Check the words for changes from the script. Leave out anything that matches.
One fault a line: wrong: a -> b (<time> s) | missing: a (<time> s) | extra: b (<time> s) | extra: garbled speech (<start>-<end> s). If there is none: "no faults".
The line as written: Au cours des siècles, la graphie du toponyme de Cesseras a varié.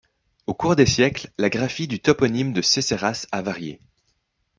no faults